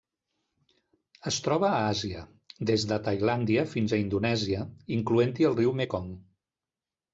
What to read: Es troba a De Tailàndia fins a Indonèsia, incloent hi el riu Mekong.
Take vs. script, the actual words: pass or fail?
fail